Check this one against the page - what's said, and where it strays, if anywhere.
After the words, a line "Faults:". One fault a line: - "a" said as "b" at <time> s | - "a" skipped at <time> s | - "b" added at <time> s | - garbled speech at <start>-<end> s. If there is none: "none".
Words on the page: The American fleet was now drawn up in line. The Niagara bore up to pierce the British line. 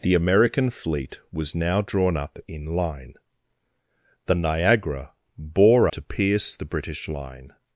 The American fleet was now drawn up in line. The Niagara bore to pierce the British line.
Faults:
- "up" skipped at 5.9 s